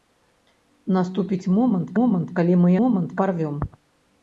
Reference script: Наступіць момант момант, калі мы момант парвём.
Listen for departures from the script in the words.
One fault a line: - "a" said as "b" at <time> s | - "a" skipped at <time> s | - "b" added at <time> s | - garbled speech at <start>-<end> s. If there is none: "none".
none